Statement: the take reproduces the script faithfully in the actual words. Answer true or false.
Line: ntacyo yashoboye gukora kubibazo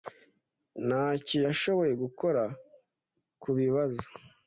true